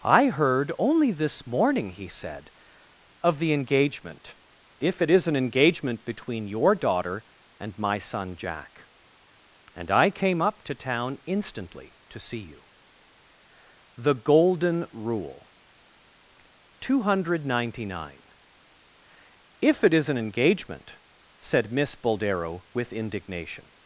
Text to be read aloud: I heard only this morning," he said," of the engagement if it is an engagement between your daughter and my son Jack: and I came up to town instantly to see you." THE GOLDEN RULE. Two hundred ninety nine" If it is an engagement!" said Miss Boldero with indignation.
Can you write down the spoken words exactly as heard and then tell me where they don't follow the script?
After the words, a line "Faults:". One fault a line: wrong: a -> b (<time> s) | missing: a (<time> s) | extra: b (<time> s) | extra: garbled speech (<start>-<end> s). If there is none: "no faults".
I heard only this morning," he said," of the engagement if it is an engagement between your daughter and my son Jack: and I came up to town instantly to see you." THE GOLDEN RULE. Two hundred ninety nine" If it is an engagement!" said Miss Boldero with indignation.
Faults:
no faults